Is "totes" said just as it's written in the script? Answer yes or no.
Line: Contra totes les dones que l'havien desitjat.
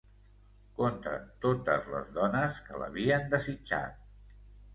yes